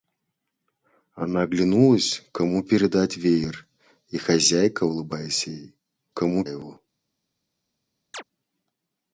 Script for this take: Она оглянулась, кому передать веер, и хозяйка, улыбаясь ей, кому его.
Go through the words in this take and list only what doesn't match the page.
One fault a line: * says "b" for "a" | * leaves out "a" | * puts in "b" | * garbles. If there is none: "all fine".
all fine